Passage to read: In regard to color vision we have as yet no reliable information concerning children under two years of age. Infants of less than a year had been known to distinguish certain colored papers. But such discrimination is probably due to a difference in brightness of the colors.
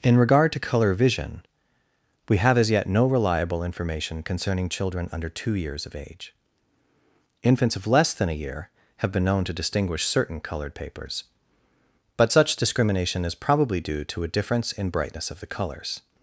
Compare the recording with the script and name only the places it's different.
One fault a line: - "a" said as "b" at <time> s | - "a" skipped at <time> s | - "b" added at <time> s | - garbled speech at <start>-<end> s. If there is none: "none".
- "had" said as "have" at 9.0 s